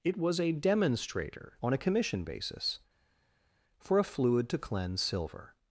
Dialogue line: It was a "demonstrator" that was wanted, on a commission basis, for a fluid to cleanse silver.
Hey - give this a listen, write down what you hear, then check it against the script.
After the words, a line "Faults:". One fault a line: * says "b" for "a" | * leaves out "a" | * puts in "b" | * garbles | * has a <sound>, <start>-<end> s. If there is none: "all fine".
It was a "demonstrator" on a commission basis, for a fluid to cleanse silver.
Faults:
* leaves out "that was wanted"